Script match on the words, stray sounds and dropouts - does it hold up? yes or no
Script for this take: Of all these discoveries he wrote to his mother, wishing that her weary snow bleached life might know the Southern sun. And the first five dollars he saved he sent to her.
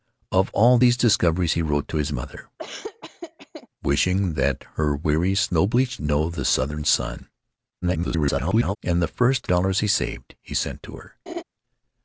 no